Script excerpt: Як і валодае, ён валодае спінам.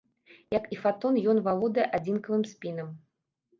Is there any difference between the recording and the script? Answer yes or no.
yes